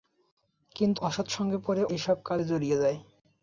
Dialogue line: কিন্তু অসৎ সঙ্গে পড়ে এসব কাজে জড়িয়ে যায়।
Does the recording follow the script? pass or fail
pass